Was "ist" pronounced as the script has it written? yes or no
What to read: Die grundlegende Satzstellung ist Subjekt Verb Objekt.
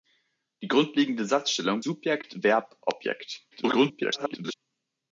no